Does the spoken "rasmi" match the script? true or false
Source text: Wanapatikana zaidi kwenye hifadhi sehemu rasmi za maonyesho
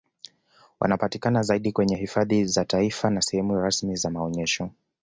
true